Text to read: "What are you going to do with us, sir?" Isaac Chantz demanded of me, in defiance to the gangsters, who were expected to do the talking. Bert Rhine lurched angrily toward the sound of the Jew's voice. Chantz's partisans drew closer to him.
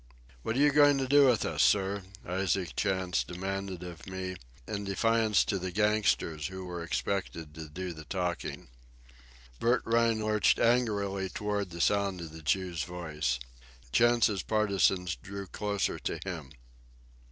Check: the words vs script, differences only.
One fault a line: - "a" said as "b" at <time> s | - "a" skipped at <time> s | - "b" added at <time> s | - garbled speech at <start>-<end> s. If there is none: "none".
none